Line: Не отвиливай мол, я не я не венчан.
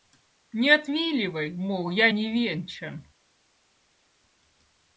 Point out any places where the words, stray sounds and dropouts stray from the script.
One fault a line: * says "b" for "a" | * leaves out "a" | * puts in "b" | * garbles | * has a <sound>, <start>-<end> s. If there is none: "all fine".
* leaves out "я не"